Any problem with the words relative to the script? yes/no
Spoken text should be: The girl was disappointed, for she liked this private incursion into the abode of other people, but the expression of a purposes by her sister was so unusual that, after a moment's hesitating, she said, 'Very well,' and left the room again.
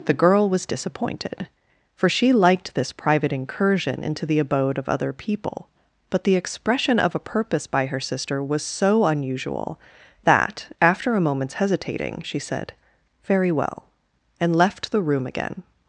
yes